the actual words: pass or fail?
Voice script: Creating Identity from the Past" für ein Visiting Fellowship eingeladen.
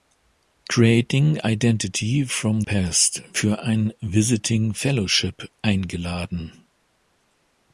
fail